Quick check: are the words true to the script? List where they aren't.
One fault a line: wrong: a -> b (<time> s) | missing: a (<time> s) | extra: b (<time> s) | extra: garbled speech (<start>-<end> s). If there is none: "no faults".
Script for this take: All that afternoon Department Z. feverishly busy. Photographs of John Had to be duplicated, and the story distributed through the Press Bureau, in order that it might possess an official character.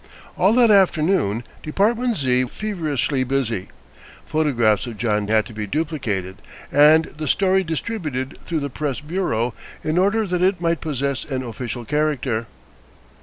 no faults